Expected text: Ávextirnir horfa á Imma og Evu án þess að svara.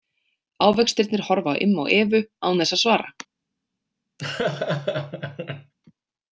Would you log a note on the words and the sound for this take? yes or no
yes